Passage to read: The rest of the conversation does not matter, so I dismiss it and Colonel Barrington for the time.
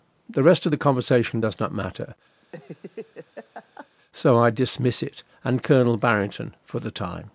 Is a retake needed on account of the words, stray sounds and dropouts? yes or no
yes